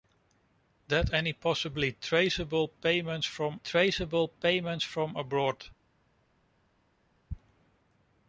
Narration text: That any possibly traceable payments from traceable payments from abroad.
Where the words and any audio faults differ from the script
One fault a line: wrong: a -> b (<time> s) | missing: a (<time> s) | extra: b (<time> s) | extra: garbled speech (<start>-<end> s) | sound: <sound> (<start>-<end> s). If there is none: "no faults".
no faults